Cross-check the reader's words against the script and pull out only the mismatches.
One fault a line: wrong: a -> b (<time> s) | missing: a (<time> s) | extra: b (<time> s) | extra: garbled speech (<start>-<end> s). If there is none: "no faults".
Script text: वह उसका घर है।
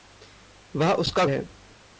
missing: घर (1.2 s)